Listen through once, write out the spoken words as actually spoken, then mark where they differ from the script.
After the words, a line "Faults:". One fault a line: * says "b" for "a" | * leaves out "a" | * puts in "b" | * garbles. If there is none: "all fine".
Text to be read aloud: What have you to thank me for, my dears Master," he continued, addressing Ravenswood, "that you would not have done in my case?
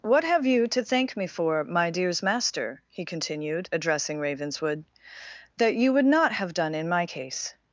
What have you to thank me for, my dears Master," he continued, addressing Ravenswood, "that you would not have done in my case?
Faults:
all fine